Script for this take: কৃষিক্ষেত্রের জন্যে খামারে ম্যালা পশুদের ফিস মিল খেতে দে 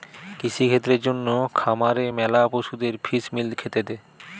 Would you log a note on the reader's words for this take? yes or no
no